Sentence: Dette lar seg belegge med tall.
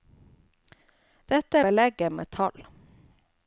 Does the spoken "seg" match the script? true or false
false